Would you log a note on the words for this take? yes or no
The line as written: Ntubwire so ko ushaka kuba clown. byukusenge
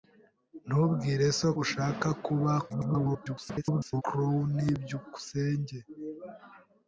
yes